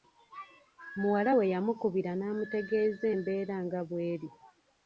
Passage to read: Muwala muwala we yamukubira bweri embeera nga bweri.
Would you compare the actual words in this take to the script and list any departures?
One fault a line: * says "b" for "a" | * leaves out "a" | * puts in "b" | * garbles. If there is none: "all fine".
* leaves out "muwala"
* says "n'amutegeeza" for "bweri"